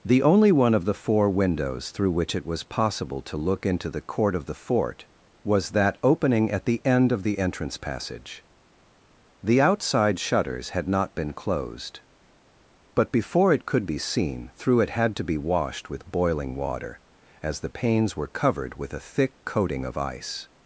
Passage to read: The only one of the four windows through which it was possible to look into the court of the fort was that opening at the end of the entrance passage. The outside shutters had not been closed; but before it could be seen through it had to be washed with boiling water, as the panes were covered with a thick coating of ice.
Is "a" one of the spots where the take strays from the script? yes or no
no